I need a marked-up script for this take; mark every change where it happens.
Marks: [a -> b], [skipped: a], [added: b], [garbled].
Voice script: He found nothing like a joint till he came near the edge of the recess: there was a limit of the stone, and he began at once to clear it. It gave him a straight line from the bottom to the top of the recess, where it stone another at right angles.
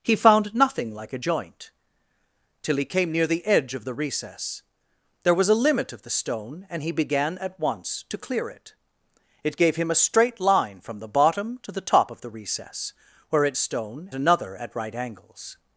He found nothing like a joint till he came near the edge of the recess: there was a limit of the stone, and he began at once to clear it. It gave him a straight line from the bottom to the top of the recess, where it stone another at right angles.